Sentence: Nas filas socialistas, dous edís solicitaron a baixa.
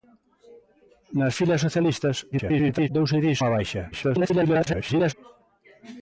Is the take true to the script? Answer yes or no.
no